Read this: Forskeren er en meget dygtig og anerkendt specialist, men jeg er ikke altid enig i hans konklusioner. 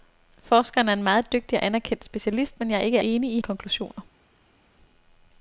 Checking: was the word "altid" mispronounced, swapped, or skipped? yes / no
yes